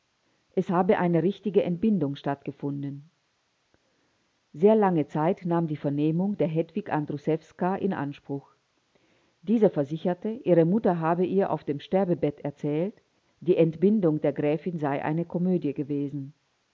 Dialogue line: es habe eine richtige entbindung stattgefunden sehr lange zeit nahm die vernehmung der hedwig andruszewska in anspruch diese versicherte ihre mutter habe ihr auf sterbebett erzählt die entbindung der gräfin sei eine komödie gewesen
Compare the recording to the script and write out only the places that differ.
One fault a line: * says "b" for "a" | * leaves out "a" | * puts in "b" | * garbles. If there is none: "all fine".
* puts in "dem"